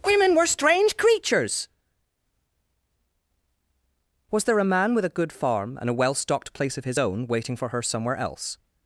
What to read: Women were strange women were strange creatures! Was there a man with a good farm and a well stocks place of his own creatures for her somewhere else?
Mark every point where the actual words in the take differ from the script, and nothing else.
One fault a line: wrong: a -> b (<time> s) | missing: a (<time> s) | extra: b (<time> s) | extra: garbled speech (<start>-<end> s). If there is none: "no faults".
missing: women were strange (1.0 s)
wrong: stocks -> stocked (6.2 s)
wrong: creatures -> waiting (7.3 s)